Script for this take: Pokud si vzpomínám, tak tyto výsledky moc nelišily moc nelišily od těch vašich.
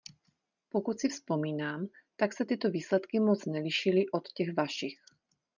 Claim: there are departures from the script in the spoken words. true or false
true